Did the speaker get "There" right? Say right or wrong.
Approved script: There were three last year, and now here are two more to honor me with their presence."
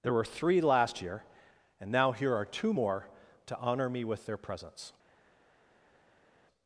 right